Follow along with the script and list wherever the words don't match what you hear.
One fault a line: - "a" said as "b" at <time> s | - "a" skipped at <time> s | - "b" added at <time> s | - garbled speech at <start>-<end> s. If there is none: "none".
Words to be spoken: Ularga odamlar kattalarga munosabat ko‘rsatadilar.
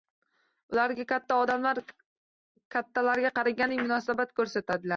- "katta" added at 1.1 s
- "qaragandek" added at 3.4 s